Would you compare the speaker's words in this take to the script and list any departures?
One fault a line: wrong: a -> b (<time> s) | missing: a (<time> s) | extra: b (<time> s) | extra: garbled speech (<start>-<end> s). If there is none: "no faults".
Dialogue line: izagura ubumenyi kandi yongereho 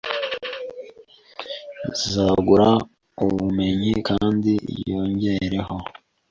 no faults